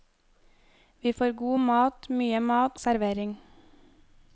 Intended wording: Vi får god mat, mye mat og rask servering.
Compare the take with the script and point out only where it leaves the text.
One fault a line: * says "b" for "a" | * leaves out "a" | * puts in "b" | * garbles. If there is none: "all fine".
* leaves out "og rask"